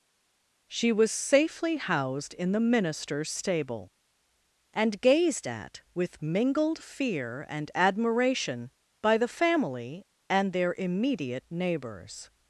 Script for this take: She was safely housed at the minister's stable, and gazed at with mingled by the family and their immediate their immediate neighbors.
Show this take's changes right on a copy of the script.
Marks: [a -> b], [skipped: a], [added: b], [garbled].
She was safely housed [at -> in] the minister's stable, and gazed at with mingled [added: fear and admiration] by the family and their immediate [skipped: their immediate] neighbors.